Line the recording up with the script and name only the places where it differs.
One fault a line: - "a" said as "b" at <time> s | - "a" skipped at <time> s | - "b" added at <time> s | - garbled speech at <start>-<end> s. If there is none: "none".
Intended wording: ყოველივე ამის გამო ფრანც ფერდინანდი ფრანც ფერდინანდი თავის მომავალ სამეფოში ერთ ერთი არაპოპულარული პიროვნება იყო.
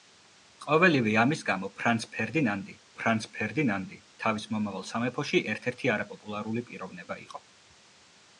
none